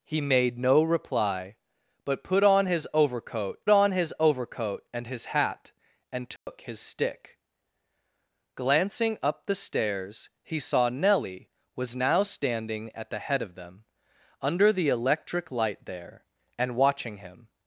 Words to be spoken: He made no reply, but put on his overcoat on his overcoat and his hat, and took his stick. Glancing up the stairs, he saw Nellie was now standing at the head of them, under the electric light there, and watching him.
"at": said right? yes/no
yes